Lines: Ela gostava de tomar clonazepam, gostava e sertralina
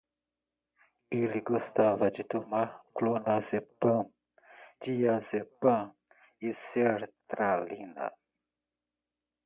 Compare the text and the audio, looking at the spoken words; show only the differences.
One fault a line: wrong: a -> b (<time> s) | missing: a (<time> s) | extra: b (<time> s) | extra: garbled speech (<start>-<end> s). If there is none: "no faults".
wrong: Ela -> Ele (1.1 s)
wrong: gostava -> diazepam (4.8 s)